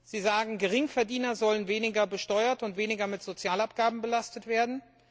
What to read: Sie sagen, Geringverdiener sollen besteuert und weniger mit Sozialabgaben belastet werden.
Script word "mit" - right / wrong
right